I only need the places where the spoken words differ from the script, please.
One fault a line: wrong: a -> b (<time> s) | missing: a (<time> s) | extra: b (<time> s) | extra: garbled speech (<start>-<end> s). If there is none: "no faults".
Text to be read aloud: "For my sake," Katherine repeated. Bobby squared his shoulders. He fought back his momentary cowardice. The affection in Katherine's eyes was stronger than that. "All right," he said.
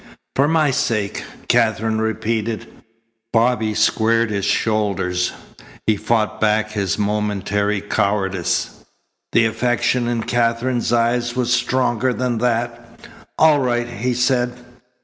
no faults